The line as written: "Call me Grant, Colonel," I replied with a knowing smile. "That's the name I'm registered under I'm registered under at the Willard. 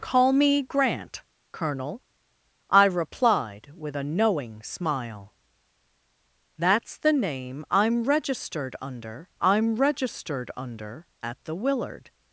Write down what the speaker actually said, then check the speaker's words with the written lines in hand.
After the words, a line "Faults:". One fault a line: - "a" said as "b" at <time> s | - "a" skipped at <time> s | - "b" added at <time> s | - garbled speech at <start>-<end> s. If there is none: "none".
"Call me Grant, Colonel," I replied with a knowing smile. "That's the name I'm registered under I'm registered under at the Willard.
Faults:
none